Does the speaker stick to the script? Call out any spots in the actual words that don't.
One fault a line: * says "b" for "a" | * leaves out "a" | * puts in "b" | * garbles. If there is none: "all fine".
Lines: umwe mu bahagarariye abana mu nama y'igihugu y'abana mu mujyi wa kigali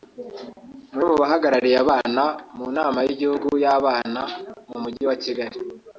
all fine